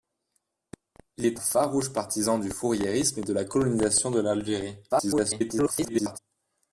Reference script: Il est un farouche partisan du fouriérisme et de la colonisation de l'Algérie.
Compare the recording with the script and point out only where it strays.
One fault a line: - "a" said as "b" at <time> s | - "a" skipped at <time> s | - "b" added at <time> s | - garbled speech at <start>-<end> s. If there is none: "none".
- "un" skipped at 1.4 s
- garbled speech at 4.9-6.2 s